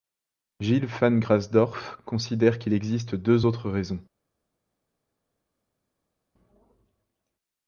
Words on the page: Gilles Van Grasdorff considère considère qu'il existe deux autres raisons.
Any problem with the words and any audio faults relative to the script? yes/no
yes